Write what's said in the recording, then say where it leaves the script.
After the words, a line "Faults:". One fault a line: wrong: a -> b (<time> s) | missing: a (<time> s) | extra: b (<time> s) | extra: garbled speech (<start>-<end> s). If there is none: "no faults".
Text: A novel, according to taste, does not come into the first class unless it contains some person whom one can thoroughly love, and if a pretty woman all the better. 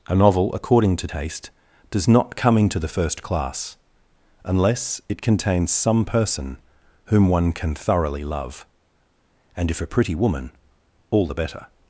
A novel, according to taste, does not come into the first class unless it contains some person whom one can thoroughly love, and if a pretty woman all the better.
Faults:
no faults